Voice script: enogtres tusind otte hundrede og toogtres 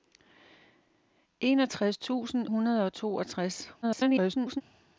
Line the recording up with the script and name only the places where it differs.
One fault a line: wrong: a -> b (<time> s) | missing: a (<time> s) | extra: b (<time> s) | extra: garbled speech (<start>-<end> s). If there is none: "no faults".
missing: otte (2.5 s)
extra: garbled speech (3.8-4.6 s)